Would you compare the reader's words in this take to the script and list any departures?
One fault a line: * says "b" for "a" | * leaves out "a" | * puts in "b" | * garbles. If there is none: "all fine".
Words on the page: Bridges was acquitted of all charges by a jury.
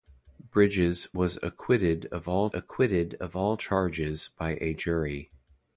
* puts in "acquitted of all"